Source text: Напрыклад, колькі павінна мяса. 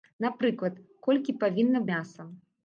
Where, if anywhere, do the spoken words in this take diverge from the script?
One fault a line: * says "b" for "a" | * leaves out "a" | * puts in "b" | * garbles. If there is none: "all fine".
all fine